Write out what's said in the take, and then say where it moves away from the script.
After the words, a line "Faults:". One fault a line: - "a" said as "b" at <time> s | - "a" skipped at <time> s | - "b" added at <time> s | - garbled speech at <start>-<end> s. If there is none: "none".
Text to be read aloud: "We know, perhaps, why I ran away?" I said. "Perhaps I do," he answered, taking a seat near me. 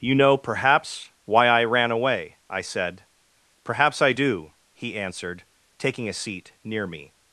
"You know, perhaps, why I ran away?" I said. "Perhaps I do," he answered, taking a seat near me.
Faults:
- "We" said as "You" at 0.0 s